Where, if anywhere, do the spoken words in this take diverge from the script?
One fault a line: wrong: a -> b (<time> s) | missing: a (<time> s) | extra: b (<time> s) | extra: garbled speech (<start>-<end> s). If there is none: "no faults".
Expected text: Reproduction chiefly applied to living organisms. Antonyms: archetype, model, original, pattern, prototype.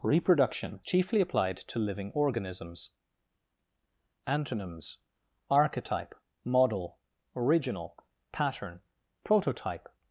no faults